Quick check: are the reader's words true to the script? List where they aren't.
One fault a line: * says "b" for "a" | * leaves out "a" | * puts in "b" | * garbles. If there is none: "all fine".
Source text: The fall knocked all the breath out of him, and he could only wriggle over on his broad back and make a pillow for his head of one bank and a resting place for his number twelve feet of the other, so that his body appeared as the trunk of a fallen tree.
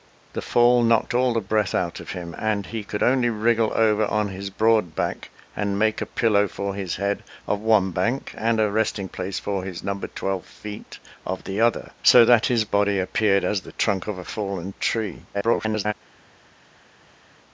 * garbles